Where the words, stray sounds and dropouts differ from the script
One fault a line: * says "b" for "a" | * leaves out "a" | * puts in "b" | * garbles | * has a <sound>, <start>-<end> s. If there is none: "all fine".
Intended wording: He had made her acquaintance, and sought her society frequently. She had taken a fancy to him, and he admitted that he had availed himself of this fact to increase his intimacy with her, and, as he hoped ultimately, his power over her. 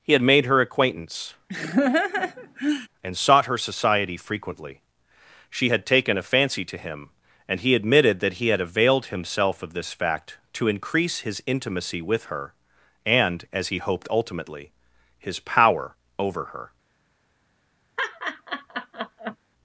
* has a laugh, 1.5-2.9 s
* has a laugh, 18.0-19.4 s